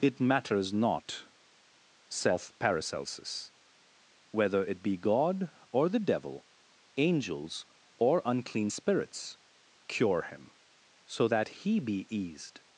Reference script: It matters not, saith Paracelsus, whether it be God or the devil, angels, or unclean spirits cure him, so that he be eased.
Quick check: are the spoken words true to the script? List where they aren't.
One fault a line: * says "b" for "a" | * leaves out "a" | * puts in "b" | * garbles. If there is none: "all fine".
all fine